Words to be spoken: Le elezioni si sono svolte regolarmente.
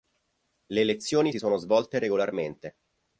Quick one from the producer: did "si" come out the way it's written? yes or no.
yes